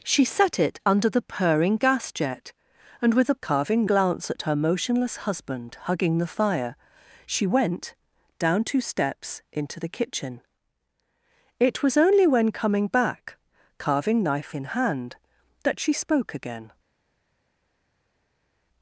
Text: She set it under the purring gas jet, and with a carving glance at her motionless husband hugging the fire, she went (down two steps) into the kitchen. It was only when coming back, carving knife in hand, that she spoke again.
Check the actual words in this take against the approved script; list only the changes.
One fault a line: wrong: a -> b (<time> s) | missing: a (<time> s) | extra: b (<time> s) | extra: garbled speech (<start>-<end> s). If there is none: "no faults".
no faults